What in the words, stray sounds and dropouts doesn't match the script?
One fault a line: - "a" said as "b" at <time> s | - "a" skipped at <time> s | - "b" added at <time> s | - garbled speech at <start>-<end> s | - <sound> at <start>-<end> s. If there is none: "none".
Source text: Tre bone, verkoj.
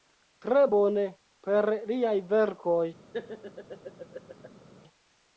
- "per liaj" added at 1.5 s
- laugh at 3.1-4.7 s